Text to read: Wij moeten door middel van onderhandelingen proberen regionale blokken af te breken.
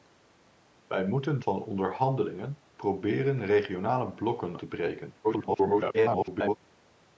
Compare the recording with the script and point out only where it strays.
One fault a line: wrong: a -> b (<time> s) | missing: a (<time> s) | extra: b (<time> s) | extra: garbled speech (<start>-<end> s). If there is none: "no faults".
missing: door middel (1.4 s)
missing: af (4.6 s)
extra: garbled speech (5.2-6.6 s)